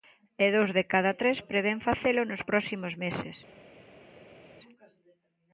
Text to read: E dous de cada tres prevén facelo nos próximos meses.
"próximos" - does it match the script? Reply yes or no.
yes